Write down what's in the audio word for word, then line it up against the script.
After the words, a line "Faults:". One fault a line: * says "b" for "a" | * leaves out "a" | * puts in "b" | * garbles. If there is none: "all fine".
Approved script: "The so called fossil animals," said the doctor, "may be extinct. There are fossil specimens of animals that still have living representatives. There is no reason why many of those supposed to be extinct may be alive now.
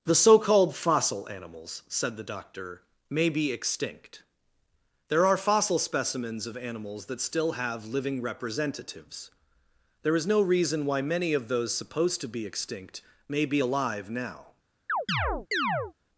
"The so called fossil animals," said the doctor, "may be extinct. There are fossil specimens of animals that still have living representatives. There is no reason why many of those supposed to be extinct may be alive now.
Faults:
all fine